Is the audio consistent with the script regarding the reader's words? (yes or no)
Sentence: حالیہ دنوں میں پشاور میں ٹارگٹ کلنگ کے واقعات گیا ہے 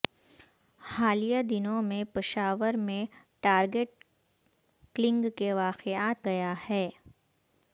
yes